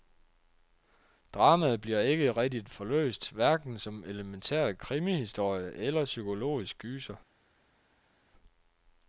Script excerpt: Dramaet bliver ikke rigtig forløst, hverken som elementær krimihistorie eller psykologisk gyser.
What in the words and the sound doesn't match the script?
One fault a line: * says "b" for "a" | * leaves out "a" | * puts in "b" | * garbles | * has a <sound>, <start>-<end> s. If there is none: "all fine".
all fine